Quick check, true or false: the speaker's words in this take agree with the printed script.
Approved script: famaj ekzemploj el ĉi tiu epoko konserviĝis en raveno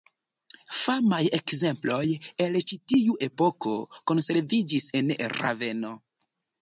true